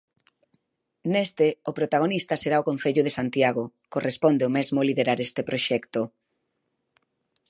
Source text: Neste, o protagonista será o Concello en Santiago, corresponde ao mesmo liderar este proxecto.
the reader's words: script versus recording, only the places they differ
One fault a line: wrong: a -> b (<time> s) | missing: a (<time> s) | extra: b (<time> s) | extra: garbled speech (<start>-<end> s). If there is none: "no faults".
wrong: en -> de (3.0 s)